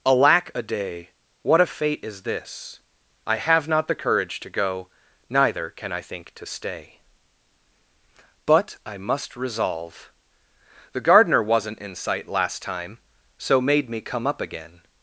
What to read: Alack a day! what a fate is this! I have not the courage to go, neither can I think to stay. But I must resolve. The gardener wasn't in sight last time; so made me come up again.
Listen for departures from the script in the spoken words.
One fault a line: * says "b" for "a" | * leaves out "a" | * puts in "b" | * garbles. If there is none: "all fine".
all fine